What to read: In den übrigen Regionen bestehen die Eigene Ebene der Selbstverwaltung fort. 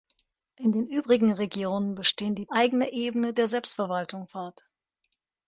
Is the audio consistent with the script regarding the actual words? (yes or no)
yes